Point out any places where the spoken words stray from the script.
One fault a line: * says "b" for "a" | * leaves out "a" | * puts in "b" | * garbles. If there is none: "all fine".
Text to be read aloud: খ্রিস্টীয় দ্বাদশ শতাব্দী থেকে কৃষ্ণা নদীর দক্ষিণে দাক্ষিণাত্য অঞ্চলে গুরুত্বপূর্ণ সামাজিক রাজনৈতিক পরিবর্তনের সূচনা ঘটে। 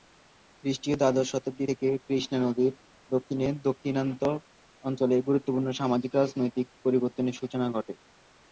all fine